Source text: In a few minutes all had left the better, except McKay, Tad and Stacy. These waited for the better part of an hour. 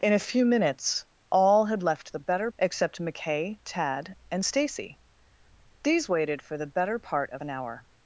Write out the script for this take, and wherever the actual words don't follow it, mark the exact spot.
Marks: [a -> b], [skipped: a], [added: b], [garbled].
In a few minutes all had left the better, except McKay, Tad and Stacy. These waited for the better part of an hour.